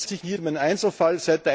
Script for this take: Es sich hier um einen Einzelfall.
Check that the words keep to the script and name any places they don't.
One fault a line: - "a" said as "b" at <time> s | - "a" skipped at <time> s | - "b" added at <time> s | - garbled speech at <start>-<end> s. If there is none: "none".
none